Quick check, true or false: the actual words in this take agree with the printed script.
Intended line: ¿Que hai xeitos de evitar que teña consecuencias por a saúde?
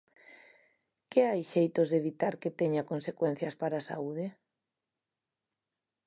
false